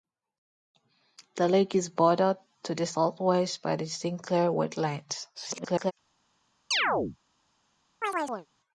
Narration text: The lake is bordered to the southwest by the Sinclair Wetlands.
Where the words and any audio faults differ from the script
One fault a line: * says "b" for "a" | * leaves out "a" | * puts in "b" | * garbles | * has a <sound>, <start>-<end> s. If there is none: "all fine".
* garbles
* has a chirp, 6.7-7.2 s
* has a chirp, 8.0-8.5 s